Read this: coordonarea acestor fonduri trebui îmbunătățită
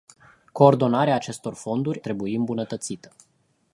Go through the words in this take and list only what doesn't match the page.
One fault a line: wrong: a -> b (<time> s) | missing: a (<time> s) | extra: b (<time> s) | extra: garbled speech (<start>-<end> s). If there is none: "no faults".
no faults